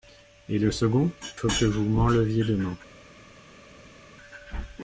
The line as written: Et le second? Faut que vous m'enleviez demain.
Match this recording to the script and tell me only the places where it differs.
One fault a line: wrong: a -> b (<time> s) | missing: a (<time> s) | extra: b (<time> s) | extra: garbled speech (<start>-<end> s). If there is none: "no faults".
no faults